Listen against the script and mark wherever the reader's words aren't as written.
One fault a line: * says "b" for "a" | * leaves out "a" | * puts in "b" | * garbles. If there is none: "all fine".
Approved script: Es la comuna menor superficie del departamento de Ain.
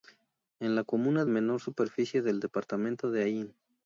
all fine